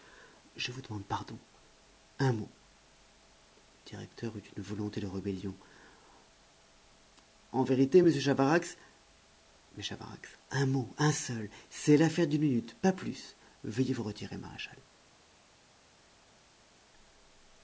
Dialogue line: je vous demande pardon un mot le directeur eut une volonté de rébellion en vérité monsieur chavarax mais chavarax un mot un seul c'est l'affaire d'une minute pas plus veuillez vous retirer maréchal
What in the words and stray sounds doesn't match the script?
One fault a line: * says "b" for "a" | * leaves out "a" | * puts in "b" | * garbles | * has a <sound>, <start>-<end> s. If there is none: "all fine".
all fine